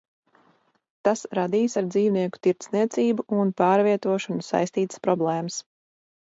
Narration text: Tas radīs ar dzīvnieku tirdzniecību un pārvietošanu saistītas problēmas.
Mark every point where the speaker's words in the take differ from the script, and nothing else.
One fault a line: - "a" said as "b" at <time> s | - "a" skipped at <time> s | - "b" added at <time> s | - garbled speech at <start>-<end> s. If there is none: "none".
none